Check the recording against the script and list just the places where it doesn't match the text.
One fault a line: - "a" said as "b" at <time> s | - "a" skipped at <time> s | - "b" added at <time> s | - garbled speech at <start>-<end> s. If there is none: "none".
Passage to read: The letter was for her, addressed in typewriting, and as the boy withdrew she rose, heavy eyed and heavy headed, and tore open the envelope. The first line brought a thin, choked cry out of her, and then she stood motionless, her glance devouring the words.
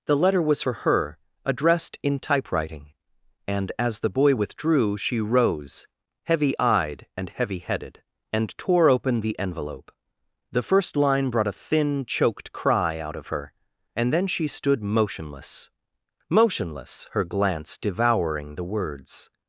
- "motionless" added at 16.3 s